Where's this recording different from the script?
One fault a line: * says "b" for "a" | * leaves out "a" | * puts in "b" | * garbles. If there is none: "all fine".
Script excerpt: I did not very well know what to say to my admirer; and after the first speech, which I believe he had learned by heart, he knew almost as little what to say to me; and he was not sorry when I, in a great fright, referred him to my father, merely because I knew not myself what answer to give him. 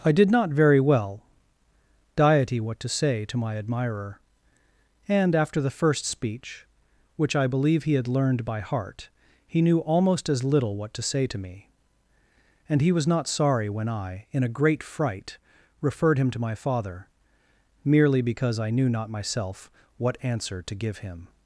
* says "diety" for "know"